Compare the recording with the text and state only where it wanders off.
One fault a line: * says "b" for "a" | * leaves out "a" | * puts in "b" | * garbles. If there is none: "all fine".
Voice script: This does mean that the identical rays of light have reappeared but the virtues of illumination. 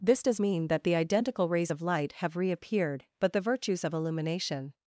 all fine